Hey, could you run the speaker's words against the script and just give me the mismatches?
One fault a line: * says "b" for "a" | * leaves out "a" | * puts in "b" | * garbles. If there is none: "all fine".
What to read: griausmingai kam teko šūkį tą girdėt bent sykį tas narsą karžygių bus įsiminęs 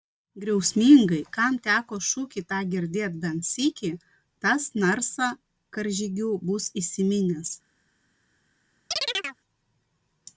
all fine